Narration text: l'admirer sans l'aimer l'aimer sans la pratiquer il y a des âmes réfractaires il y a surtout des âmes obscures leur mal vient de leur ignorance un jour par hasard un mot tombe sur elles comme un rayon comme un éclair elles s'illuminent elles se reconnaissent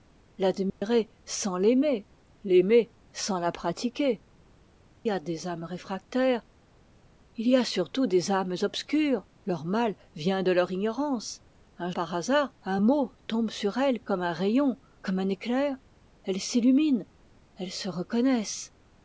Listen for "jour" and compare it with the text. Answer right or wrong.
wrong